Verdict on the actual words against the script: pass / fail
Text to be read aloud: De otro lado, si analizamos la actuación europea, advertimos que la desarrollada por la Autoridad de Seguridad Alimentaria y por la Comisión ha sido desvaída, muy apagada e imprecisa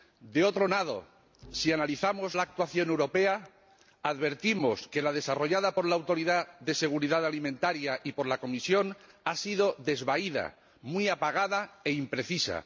pass